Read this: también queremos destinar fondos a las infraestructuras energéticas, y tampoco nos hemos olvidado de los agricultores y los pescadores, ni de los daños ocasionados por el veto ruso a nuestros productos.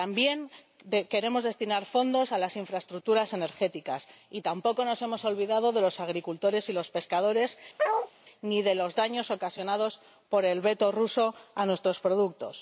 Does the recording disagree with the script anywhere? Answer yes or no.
no